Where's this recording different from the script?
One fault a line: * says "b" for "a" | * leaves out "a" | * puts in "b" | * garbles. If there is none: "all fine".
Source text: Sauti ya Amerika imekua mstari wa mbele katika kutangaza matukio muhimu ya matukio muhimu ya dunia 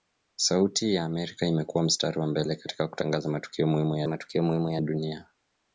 all fine